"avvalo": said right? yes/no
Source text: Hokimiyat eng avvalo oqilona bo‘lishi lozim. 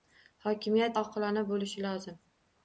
no